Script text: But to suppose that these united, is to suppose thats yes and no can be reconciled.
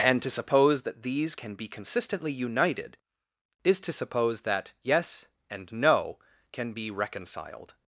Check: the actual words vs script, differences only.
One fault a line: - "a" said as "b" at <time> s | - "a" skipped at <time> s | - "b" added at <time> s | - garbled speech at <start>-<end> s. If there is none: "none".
- "But" said as "And" at 0.0 s
- "can be consistently" added at 1.3 s
- "thats" said as "that" at 4.4 s